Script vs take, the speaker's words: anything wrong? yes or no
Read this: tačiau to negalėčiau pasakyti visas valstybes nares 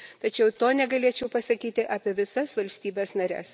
yes